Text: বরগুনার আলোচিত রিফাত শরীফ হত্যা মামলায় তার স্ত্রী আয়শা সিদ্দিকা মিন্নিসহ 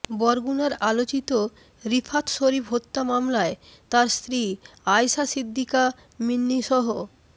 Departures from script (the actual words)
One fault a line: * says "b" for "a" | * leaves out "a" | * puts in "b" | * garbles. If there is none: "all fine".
all fine